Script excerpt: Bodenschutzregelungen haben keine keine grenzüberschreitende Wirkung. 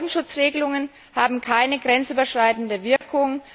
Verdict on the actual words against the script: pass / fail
fail